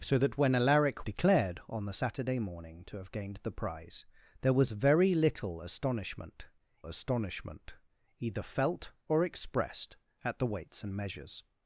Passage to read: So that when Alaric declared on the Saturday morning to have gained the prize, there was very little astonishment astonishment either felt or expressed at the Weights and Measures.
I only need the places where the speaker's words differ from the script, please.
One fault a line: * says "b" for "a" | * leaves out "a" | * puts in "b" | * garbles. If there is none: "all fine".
all fine